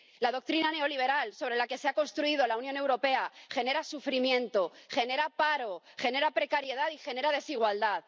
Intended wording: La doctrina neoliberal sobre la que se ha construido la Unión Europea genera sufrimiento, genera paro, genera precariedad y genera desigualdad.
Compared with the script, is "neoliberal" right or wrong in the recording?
right